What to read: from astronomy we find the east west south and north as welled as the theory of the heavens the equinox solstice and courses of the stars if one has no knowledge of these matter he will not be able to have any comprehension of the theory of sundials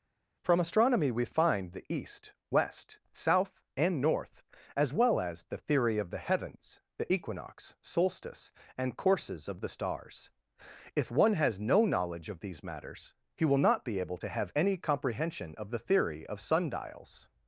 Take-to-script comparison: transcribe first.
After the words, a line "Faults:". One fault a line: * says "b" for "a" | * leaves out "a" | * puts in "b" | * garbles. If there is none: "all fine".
from astronomy we find the east west south and north as well as the theory of the heavens the equinox solstice and courses of the stars if one has no knowledge of these matters he will not be able to have any comprehension of the theory of sundials
Faults:
* says "well" for "welled"
* says "matters" for "matter"